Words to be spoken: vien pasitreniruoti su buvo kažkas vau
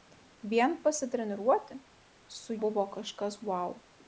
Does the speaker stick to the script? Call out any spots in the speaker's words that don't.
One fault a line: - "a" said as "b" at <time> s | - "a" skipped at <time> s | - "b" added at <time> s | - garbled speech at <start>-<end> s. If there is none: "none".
none